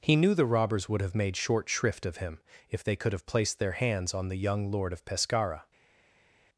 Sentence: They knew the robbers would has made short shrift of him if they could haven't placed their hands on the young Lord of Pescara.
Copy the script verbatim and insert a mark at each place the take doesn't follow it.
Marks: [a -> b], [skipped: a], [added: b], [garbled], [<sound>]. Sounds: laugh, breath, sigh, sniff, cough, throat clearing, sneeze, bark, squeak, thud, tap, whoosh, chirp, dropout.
[They -> He] knew the robbers would [has -> have] made short shrift of him if they could [haven't -> have] placed their hands on the young Lord of Pescara.